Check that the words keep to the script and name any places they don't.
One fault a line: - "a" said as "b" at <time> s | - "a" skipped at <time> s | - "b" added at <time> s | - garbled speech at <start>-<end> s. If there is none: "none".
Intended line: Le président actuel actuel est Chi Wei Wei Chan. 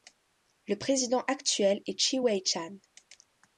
- "actuel" skipped at 1.8 s
- "Wei" skipped at 2.4 s